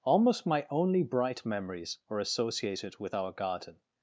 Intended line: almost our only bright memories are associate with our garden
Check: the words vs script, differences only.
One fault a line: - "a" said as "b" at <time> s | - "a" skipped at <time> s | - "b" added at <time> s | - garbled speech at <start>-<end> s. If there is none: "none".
- "our" said as "my" at 0.5 s
- "associate" said as "associated" at 2.2 s